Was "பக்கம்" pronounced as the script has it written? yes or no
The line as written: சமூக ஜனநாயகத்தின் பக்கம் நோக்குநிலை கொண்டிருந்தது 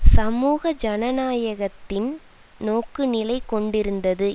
no